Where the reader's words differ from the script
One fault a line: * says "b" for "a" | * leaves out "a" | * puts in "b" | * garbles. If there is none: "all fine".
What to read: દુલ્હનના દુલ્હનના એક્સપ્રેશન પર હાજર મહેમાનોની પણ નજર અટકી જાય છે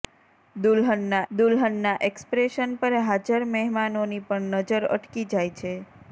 all fine